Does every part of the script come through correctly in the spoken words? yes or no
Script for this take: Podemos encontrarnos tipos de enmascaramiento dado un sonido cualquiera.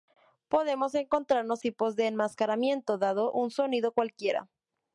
yes